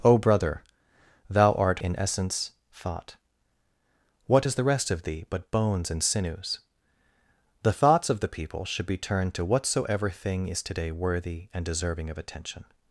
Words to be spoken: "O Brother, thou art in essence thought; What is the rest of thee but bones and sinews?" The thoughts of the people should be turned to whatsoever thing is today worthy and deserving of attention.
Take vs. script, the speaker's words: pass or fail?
pass